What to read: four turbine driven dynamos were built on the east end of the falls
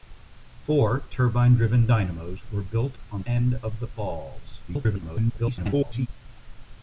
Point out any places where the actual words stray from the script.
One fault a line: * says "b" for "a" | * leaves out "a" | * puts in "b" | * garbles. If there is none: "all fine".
* leaves out "the east"
* garbles